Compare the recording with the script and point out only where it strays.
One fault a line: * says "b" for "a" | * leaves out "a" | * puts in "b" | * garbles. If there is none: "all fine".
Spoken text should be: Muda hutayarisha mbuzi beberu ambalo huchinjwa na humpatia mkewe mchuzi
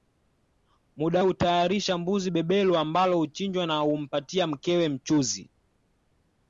all fine